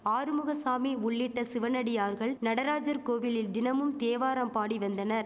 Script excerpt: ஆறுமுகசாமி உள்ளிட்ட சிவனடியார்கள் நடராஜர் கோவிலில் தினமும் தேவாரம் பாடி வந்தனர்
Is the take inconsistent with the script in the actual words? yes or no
no